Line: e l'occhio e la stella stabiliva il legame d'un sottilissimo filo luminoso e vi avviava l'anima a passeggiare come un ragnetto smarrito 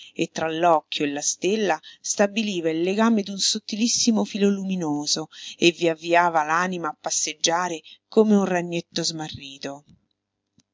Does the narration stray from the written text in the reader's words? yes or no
yes